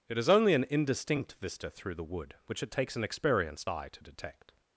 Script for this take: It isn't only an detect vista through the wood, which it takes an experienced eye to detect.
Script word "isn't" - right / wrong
wrong